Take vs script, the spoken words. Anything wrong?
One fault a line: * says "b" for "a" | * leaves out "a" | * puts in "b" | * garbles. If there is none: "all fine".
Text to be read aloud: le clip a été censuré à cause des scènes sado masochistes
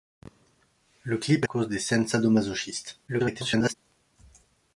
* leaves out "été censuré à"
* garbles